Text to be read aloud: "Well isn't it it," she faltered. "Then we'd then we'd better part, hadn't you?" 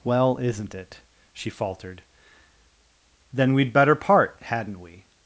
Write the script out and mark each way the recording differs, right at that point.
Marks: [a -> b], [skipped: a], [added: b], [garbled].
"Well isn't it [skipped: it,"] she faltered. "Then we'd [skipped: then we'd] better part, hadn't [you?" -> we]